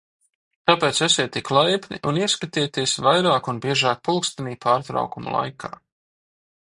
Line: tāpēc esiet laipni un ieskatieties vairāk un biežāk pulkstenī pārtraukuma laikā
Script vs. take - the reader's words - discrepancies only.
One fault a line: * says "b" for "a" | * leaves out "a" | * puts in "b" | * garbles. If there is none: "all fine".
* puts in "tik"